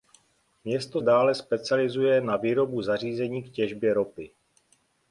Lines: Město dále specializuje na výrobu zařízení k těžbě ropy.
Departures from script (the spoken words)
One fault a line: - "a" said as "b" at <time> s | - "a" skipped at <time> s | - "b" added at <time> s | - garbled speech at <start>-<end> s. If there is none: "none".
none